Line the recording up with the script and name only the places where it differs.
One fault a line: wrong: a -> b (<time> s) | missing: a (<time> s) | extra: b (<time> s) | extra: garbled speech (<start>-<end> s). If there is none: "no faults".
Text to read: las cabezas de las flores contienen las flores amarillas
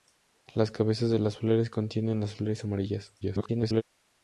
extra: garbled speech (3.2-3.8 s)